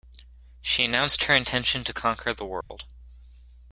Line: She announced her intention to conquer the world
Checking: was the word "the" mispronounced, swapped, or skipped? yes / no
no